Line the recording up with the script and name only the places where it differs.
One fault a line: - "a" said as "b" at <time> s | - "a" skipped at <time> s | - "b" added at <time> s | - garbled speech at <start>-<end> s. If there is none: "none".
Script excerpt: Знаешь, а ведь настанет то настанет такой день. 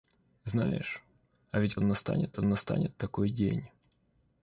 none